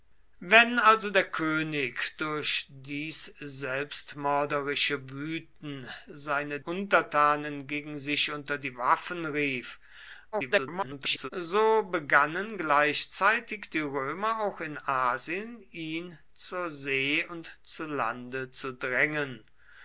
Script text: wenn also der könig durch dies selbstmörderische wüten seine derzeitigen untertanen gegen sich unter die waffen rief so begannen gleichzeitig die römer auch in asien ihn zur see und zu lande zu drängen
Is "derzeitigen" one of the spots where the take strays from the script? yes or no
yes